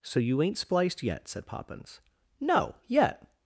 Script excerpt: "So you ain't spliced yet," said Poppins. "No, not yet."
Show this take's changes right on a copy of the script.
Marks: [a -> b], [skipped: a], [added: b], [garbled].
"So you ain't spliced yet," said Poppins. "No, [skipped: not] yet."